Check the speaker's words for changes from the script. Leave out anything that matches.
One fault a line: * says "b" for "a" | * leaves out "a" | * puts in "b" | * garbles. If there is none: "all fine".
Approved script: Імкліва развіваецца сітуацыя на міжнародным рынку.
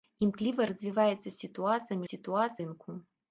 * says "сітуацыя" for "міжнародным"